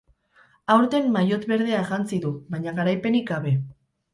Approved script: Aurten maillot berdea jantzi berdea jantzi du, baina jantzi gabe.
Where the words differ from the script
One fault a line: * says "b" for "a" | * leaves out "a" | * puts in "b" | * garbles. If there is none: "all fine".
* leaves out "berdea jantzi"
* says "garaipenik" for "jantzi"